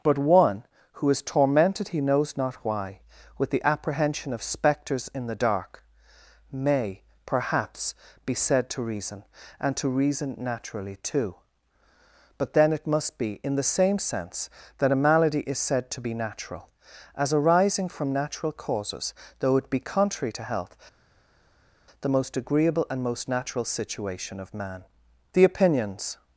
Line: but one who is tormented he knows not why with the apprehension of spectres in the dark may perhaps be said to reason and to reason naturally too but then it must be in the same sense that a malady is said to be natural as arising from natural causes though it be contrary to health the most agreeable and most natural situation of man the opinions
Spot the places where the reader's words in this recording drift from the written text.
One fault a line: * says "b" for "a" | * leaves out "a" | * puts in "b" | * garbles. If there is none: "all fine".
all fine